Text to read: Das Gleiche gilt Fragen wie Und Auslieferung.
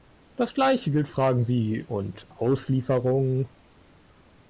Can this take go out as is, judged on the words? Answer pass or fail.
pass